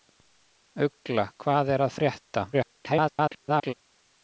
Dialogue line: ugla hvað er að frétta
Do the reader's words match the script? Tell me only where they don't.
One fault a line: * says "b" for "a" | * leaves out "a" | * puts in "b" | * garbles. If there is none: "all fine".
* garbles